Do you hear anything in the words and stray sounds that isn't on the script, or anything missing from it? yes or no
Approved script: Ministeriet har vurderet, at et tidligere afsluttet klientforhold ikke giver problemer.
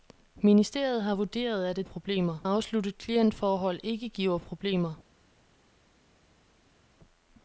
yes